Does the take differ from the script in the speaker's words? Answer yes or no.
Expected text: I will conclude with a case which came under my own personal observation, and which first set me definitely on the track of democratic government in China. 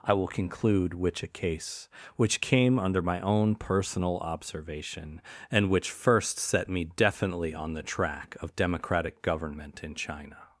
yes